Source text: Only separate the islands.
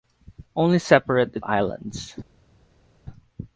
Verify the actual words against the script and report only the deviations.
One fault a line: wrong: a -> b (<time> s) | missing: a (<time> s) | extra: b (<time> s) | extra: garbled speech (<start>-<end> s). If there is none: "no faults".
no faults